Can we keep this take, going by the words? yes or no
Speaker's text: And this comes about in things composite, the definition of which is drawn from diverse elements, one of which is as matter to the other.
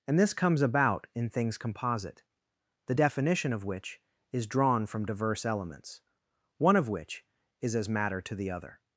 yes